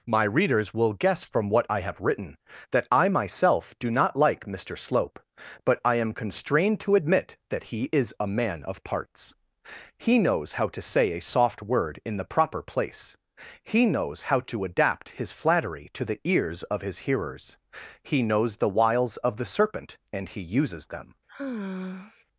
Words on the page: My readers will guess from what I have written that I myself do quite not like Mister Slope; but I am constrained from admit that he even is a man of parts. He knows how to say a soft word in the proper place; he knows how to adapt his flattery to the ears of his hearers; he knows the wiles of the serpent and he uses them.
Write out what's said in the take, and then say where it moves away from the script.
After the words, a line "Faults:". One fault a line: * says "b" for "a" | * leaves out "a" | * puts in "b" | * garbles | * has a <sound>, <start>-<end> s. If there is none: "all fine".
My readers will guess from what I have written that I myself do not like Mister Slope; but I am constrained to admit that he is a man of parts. He knows how to say a soft word in the proper place; he knows how to adapt his flattery to the ears of his hearers; he knows the wiles of the serpent and he uses them.
Faults:
* leaves out "quite"
* says "to" for "from"
* leaves out "even"
* has a sigh, 21.3-22.2 s